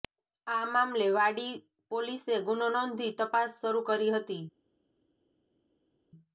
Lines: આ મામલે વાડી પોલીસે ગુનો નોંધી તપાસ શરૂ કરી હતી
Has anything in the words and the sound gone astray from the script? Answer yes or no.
no